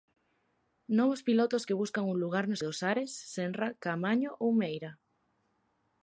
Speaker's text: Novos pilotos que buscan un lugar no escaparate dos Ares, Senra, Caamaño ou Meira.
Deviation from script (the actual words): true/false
true